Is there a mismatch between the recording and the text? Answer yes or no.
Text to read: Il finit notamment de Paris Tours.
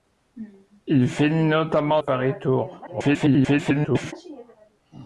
yes